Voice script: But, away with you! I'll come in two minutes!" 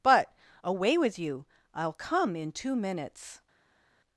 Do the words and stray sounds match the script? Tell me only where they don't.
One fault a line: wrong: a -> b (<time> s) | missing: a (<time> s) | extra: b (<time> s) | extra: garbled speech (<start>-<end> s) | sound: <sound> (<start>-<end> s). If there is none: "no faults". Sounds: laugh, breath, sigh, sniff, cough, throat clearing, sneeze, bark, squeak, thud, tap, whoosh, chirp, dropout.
no faults